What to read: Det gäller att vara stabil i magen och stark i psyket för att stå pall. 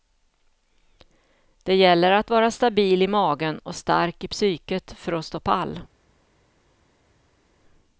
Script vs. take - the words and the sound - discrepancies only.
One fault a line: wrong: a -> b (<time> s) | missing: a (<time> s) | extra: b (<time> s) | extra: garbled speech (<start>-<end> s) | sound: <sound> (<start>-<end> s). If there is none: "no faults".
no faults